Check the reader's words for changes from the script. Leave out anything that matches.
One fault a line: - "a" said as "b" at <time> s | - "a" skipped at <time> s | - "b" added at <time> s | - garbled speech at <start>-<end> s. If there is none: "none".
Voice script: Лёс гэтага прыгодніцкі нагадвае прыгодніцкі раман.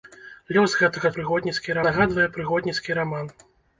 none